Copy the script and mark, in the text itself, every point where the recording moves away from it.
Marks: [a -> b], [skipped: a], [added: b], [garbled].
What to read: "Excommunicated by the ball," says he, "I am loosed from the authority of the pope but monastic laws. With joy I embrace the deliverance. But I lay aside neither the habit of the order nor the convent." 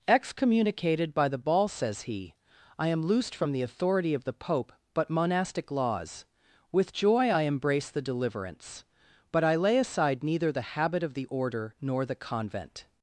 "Excommunicated by the ball," says he, "I am loosed from the authority of the pope but monastic laws. With joy I embrace the deliverance. But I lay aside neither the habit of the order nor the convent."